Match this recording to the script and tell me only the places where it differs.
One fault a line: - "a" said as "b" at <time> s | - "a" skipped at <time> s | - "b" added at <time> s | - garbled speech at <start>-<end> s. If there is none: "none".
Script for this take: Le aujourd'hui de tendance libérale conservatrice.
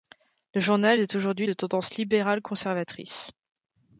- "journal est" added at 0.6 s